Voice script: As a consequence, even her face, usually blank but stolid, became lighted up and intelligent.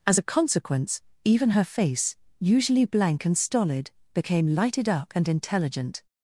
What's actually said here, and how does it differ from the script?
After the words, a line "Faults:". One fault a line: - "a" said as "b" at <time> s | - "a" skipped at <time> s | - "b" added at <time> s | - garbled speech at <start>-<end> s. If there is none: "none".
As a consequence, even her face, usually blank and stolid, became lighted up and intelligent.
Faults:
- "but" said as "and" at 3.2 s